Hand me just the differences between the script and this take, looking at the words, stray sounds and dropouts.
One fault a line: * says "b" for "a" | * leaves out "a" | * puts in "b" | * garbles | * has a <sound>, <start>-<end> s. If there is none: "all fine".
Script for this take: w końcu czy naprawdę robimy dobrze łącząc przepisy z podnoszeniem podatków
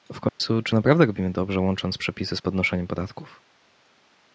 * has a dropout, 0.3-0.4 s